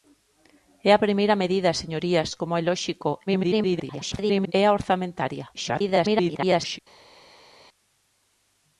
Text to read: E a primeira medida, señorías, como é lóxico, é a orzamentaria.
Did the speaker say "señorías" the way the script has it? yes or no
yes